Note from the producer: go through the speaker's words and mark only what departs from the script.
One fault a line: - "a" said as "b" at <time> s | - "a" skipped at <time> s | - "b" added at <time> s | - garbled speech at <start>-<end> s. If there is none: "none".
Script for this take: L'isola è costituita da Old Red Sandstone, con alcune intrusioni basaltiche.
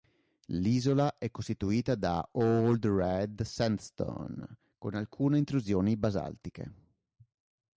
none